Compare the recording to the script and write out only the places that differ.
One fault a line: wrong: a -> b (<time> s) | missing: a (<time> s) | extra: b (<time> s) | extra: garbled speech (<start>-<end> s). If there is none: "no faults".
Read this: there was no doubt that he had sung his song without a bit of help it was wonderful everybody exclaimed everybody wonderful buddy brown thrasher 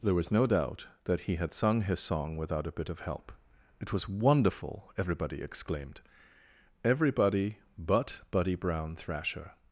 wrong: wonderful -> but (7.8 s)